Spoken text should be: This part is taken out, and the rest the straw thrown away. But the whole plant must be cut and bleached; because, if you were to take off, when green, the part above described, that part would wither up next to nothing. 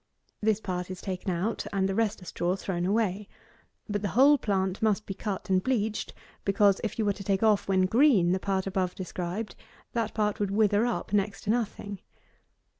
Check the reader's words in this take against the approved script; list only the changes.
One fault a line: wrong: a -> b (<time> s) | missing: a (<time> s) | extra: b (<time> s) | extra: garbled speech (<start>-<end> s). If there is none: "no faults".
no faults